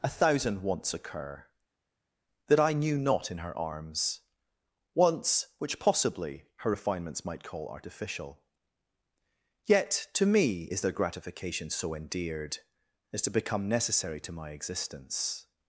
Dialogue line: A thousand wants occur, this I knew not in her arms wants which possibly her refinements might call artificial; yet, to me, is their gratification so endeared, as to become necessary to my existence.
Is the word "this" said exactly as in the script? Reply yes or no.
no